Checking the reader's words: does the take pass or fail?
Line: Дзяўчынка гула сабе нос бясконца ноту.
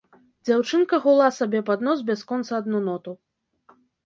fail